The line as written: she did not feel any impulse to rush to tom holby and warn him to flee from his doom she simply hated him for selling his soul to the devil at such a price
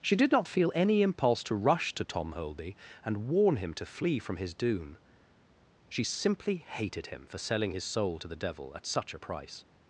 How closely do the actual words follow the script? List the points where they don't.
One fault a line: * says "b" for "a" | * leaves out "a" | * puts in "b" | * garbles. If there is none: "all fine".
all fine